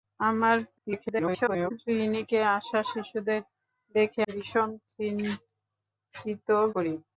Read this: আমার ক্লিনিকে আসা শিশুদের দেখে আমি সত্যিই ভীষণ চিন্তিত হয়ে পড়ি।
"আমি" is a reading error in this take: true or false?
true